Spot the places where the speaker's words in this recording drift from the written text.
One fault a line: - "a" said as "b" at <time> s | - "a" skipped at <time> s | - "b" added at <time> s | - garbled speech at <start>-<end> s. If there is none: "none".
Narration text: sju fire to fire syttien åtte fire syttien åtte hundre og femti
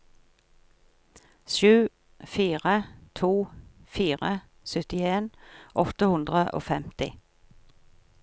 - "fire syttien åtte" skipped at 6.1 s